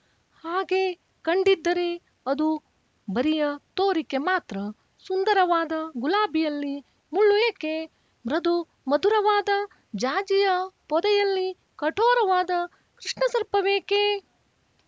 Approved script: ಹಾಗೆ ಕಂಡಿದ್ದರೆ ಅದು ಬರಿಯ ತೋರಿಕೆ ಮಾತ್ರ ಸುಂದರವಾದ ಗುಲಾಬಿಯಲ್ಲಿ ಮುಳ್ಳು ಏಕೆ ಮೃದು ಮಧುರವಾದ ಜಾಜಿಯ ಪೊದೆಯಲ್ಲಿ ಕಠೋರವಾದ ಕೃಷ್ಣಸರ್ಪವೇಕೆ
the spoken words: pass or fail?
pass